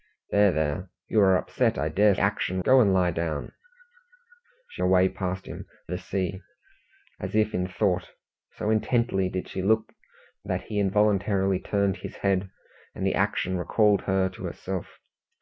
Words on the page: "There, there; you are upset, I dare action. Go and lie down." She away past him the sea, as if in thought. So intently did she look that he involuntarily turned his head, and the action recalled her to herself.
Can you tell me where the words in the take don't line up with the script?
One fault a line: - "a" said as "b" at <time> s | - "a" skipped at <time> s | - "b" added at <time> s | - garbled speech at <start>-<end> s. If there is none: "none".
none